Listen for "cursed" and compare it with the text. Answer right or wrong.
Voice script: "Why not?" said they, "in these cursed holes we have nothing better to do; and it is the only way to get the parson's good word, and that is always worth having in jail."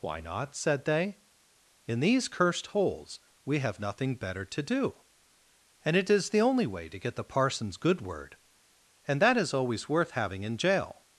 right